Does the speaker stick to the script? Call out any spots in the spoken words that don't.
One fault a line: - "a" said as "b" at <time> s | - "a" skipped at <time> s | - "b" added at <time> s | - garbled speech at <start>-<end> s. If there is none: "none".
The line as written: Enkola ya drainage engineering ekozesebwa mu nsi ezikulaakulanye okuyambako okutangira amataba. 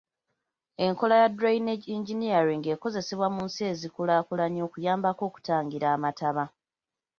none